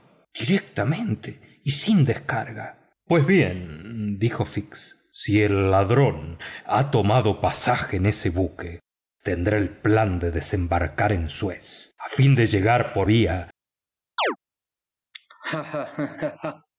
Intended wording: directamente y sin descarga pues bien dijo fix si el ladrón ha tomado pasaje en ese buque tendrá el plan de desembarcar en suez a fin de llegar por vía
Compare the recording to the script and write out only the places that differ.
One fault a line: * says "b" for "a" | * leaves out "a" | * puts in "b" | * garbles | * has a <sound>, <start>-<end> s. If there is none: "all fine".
* has a chirp, 14.2-14.4 s
* has a laugh, 15.1-16.7 s